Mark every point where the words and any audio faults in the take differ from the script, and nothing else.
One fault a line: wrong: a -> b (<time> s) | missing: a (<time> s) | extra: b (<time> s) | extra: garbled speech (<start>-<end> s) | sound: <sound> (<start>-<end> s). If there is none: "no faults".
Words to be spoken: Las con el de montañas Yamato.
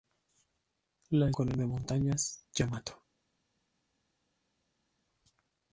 no faults